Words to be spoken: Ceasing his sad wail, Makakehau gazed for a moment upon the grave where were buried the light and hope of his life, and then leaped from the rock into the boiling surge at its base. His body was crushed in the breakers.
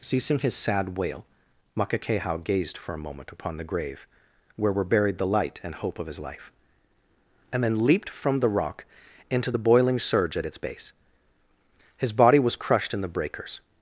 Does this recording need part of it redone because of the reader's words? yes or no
no